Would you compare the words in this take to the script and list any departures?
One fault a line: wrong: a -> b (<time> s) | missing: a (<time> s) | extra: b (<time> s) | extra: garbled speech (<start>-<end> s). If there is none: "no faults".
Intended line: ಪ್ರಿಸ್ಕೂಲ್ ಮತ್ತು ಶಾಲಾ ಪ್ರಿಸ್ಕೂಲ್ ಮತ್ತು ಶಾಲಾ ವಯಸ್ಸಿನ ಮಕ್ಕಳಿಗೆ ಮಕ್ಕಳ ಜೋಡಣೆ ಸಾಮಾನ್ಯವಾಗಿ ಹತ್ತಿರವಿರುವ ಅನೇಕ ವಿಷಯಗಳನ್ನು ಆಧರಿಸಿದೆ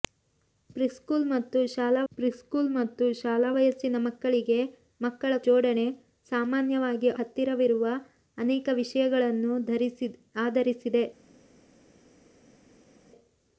no faults